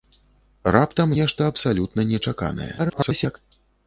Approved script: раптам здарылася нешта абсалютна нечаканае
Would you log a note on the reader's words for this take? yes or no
yes